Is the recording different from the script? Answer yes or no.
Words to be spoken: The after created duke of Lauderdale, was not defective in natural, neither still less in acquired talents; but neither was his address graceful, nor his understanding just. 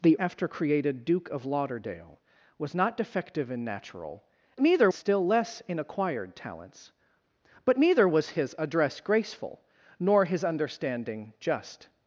no